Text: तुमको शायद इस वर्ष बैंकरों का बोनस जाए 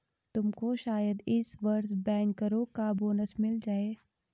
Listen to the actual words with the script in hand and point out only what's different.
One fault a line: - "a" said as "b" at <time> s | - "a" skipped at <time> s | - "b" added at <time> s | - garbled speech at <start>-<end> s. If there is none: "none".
- "मिल" added at 3.4 s